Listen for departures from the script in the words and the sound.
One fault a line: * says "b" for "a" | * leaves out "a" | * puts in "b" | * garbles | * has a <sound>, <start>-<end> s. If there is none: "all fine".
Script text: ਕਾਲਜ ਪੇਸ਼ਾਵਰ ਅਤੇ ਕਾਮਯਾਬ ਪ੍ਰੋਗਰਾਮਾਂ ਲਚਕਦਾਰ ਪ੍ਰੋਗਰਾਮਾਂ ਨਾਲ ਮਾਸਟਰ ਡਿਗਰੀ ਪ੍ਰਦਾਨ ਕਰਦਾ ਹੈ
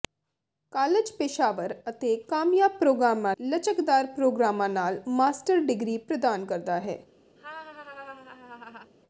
* has a laugh, 7.4-8.9 s